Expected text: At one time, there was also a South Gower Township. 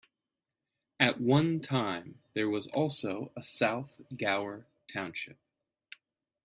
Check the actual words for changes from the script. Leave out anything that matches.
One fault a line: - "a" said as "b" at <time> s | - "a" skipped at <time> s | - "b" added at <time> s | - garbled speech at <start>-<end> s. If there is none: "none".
none